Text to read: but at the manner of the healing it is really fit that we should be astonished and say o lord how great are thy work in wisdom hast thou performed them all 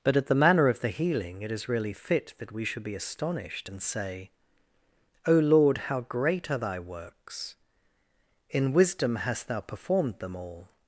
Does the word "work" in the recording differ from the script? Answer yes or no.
yes